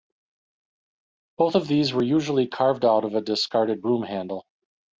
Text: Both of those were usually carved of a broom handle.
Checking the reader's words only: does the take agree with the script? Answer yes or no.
no